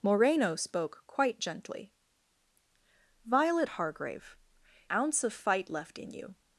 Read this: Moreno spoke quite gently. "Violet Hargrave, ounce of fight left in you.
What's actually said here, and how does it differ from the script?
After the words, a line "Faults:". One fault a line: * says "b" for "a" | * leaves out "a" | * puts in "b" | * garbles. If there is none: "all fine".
Moreno spoke quite gently. "Violet Hargrave, ounce of fight left in you.
Faults:
all fine